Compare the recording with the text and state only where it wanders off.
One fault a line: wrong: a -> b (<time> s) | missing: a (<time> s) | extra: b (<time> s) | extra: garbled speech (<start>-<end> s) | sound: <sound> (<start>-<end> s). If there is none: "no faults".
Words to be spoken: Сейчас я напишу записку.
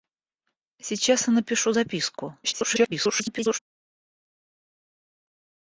extra: garbled speech (2.4-3.6 s)